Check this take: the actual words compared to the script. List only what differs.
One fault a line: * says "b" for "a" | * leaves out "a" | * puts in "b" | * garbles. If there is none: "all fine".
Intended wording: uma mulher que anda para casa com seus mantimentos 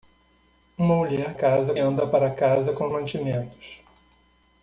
* says "casa" for "que"
* leaves out "seus"